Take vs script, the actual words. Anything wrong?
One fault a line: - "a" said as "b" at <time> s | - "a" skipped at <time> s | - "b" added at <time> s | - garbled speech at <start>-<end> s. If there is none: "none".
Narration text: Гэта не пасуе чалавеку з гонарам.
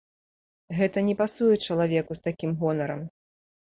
- "такім" added at 2.3 s